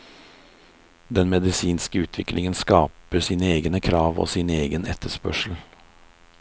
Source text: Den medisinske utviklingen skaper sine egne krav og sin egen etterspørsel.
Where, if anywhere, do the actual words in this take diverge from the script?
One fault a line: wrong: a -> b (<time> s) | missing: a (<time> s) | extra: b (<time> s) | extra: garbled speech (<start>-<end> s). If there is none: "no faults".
no faults